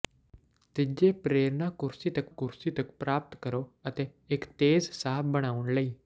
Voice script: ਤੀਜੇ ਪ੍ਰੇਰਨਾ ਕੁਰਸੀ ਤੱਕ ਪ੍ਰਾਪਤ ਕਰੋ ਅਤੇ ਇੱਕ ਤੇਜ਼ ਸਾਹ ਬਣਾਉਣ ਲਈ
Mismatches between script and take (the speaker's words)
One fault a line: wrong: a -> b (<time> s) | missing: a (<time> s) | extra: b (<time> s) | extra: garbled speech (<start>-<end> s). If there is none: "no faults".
extra: ਕੁਰਸੀ ਤੱਕ (2.3 s)